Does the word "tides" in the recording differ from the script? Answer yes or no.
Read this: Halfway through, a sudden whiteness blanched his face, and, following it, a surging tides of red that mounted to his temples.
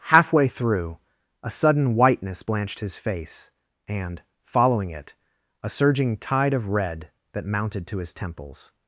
yes